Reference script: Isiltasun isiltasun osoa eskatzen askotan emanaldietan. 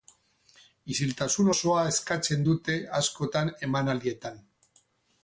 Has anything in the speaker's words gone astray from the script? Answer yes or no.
yes